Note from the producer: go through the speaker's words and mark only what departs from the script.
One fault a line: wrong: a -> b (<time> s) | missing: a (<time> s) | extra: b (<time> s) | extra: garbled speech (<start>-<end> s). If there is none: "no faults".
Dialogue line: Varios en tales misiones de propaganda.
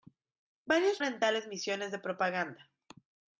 no faults